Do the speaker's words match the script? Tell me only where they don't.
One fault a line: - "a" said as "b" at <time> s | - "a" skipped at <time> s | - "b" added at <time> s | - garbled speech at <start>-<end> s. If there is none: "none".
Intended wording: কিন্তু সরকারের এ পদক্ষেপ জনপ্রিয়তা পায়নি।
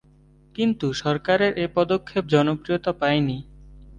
none